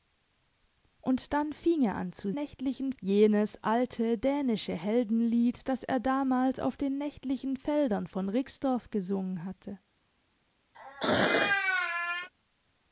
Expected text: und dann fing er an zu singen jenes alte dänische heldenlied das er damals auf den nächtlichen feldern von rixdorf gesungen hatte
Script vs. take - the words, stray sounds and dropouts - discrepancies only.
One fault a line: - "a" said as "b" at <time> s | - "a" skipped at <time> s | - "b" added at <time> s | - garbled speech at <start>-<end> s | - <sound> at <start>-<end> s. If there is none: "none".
- "singen" said as "nächtlichen" at 2.3 s
- throat clearing at 10.7-12.3 s